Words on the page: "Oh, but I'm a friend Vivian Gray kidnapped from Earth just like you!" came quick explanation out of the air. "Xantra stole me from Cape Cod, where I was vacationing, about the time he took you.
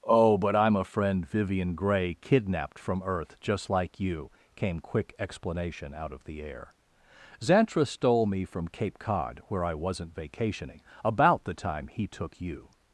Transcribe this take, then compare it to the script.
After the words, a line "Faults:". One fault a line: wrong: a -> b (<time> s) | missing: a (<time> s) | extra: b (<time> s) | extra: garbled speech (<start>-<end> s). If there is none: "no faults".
"Oh, but I'm a friend Vivian Gray kidnapped from Earth just like you!" came quick explanation out of the air. "Xantra stole me from Cape Cod, where I wasn't vacationing, about the time he took you.
Faults:
wrong: was -> wasn't (9.7 s)